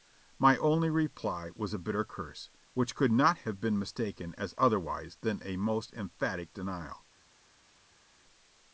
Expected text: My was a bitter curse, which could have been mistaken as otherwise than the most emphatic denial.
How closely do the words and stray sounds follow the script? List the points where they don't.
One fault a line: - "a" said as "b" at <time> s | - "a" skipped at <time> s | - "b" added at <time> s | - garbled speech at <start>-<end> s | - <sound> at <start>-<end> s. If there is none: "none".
- "only reply" added at 0.6 s
- "not" added at 3.1 s
- "the" said as "a" at 5.4 s